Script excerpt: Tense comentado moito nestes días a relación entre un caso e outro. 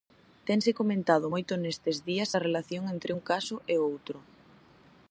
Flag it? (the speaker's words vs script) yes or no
no